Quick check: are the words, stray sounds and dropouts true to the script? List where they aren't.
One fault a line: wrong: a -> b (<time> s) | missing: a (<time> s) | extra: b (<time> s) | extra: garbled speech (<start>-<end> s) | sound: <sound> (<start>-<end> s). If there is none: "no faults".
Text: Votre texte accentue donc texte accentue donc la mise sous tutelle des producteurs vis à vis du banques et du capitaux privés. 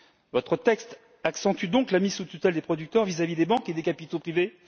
missing: texte accentue donc (1.9 s)
wrong: du -> des (3.4 s)
wrong: du -> des (3.7 s)